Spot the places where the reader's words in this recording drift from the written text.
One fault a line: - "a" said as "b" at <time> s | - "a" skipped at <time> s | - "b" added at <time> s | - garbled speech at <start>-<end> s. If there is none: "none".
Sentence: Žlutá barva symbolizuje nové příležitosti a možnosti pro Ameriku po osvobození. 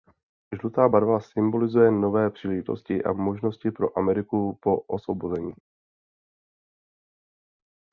none